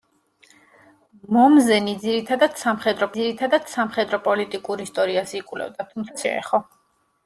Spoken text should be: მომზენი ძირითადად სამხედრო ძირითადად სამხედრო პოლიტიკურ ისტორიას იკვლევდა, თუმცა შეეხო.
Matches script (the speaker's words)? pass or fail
pass